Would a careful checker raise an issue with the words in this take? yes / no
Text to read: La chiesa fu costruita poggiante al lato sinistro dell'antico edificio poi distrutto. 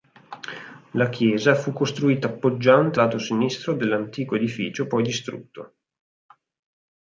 yes